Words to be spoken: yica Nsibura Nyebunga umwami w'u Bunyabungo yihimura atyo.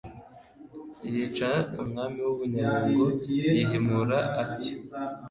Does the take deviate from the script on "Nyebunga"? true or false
true